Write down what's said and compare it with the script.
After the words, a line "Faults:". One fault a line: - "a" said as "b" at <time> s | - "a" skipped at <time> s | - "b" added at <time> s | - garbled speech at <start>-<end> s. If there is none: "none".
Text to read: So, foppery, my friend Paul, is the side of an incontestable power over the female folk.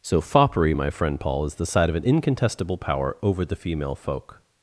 So, foppery, my friend Paul, is the side of an incontestable power over the female folk.
Faults:
none